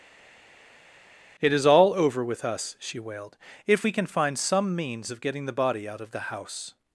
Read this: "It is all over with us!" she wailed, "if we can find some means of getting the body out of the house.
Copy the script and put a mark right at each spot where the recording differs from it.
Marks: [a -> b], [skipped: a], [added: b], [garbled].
"It is all over with us!" she wailed, "if we can find some means of getting the body out of the house.